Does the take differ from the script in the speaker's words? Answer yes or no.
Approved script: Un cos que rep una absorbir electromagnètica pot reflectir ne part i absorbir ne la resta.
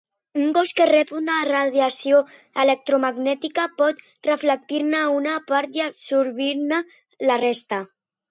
yes